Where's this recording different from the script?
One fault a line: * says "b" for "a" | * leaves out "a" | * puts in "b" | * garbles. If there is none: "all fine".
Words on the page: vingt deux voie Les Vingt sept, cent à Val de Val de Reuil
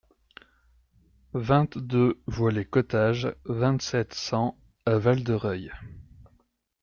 * puts in "Cottages"
* leaves out "Val de"